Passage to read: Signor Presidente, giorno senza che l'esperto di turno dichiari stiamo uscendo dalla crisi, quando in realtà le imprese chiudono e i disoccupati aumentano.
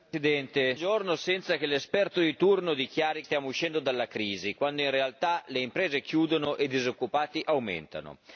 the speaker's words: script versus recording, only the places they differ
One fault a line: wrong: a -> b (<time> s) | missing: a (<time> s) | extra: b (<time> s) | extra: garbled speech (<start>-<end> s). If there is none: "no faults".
no faults